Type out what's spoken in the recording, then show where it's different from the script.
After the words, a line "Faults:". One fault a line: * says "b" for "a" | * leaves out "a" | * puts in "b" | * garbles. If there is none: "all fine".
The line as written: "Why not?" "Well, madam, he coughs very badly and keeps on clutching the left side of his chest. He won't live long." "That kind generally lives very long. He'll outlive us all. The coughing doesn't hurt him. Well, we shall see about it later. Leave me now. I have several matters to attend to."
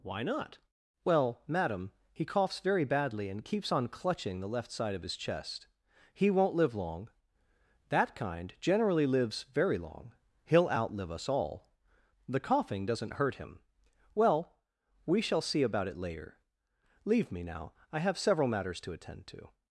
"Why not?" "Well, madam, he coughs very badly and keeps on clutching the left side of his chest. He won't live long." "That kind generally lives very long. He'll outlive us all. The coughing doesn't hurt him. Well, we shall see about it later. Leave me now. I have several matters to attend to."
Faults:
all fine